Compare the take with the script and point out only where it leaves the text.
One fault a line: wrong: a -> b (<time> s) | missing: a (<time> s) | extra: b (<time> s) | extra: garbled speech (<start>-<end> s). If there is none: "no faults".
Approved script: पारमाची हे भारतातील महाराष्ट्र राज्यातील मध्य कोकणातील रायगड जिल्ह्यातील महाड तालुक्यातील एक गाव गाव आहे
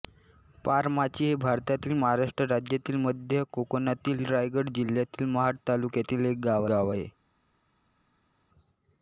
no faults